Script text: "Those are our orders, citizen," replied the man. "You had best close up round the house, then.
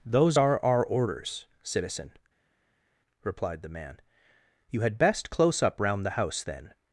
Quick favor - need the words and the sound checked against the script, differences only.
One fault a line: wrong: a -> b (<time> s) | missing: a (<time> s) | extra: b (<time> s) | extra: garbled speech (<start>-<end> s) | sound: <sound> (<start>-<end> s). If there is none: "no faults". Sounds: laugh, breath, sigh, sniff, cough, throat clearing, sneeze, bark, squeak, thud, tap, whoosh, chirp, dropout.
no faults